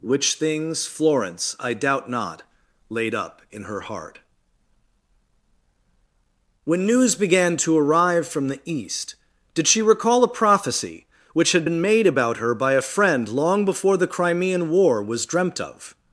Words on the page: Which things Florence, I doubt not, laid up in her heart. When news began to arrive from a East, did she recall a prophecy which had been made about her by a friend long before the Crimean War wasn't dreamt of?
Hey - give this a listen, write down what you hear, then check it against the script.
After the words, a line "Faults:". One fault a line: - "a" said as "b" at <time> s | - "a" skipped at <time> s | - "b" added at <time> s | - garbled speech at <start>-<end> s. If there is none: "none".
Which things Florence, I doubt not, laid up in her heart. When news began to arrive from the East, did she recall a prophecy which had been made about her by a friend long before the Crimean War was dreamt of?
Faults:
- "a" said as "the" at 8.5 s
- "wasn't" said as "was" at 15.0 s